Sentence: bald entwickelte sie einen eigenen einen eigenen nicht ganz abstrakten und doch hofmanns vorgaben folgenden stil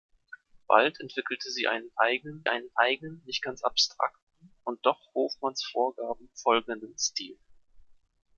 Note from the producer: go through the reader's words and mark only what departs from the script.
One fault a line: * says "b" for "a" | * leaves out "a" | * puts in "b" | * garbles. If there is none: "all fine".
all fine